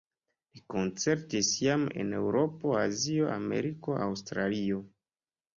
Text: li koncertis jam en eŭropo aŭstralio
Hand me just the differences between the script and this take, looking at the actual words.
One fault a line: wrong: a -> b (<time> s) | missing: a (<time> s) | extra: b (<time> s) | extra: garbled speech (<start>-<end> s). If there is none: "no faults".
extra: azio ameriko (2.9 s)